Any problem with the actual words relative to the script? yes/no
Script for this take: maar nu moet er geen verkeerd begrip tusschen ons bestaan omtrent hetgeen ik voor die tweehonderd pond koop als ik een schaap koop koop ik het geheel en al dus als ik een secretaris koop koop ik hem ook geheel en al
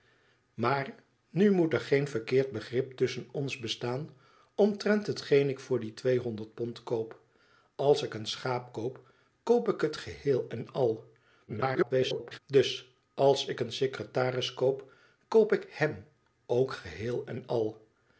yes